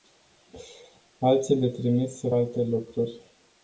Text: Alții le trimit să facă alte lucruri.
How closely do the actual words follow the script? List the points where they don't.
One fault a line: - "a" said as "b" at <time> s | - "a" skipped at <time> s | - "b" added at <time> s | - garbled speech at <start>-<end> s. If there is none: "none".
- "facă" skipped at 2.3 s